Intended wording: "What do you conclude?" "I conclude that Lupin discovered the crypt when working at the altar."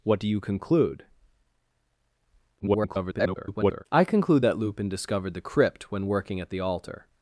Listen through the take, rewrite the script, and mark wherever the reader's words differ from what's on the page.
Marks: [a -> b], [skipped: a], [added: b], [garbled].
"What do you conclude?" [garbled] "I conclude that Lupin discovered the crypt when working at the altar."